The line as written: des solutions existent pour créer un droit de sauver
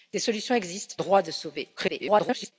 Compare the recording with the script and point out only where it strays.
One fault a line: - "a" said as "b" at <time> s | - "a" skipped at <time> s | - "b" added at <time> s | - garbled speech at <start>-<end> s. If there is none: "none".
- "pour créer un" skipped at 0.9 s
- garbled speech at 1.8-2.5 s